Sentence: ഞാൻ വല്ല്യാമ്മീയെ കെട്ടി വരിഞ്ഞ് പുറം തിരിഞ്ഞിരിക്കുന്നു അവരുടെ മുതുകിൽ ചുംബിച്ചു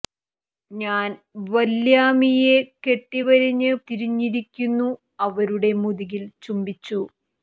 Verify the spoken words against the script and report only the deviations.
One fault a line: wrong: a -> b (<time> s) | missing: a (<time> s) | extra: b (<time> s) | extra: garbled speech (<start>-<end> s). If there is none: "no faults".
missing: പുറം (3.7 s)